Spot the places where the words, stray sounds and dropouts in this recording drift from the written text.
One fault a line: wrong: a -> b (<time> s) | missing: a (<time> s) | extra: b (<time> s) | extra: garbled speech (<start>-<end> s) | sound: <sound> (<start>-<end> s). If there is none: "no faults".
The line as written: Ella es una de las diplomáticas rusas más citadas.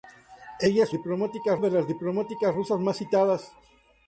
wrong: una -> diplomáticas (0.9 s)